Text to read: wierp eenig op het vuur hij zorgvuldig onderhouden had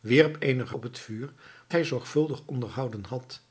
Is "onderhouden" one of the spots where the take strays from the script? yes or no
no